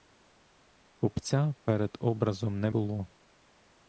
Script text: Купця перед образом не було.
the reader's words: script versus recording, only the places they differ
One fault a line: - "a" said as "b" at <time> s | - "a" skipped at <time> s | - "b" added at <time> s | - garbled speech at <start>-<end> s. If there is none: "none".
none